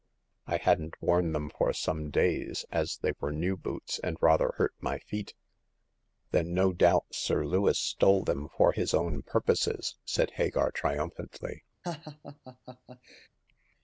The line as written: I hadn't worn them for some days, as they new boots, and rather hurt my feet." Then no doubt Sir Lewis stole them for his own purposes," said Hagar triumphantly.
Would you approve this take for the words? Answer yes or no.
no